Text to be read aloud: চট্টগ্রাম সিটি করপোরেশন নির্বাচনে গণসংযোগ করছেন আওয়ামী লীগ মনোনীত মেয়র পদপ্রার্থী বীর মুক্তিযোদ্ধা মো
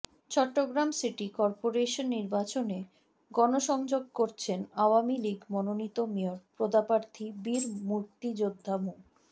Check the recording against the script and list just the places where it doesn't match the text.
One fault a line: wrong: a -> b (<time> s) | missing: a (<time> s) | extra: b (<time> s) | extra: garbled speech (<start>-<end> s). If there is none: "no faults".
no faults